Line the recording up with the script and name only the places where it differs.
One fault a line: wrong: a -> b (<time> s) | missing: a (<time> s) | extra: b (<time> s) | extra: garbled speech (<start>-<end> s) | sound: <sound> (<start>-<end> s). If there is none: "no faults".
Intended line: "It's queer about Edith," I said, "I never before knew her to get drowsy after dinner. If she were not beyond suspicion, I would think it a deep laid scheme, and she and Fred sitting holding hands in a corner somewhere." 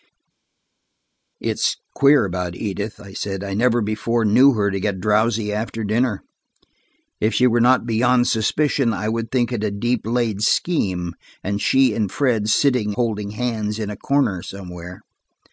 no faults